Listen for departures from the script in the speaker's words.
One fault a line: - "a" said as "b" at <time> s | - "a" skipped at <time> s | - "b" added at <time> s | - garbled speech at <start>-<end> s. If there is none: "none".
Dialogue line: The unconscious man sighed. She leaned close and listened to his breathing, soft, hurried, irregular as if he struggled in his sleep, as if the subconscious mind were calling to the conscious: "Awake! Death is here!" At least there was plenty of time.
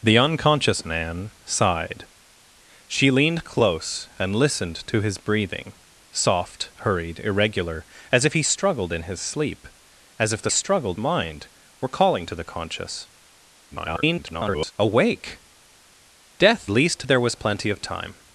- "subconscious" said as "struggled" at 10.5 s
- garbled speech at 13.7-14.7 s
- "is here At" skipped at 16.7 s